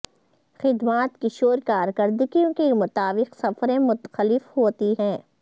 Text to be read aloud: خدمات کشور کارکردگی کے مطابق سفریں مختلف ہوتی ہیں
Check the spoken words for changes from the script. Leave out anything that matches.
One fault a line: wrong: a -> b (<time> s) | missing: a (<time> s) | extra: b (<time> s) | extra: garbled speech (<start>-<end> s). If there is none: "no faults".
no faults